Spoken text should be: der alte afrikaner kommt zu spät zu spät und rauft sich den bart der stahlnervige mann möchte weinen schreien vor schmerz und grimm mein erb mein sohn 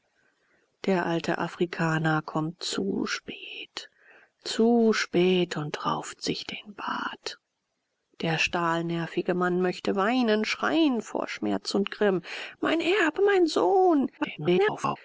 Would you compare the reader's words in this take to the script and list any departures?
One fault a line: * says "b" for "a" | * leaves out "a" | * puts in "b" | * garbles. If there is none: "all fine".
* garbles